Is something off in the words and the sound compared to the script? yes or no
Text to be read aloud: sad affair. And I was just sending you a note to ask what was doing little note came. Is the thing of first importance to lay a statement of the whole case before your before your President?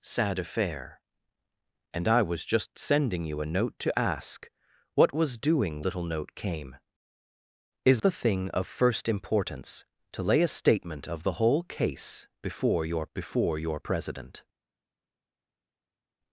no